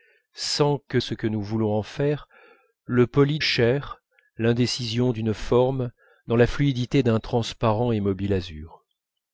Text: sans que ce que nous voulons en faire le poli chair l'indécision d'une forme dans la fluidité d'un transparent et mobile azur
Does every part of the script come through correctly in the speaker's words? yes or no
yes